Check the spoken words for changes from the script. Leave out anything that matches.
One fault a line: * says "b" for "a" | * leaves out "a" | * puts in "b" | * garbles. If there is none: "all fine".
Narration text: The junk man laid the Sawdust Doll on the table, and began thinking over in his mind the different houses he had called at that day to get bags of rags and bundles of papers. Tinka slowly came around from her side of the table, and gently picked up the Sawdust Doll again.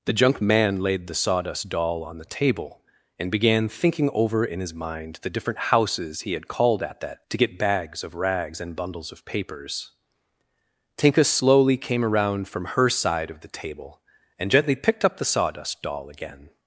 * leaves out "day"